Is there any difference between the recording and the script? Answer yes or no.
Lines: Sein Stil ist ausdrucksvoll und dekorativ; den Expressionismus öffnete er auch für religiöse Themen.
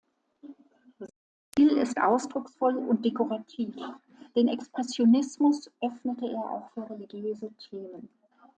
no